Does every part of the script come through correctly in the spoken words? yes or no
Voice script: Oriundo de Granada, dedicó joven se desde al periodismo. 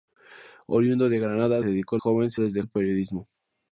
yes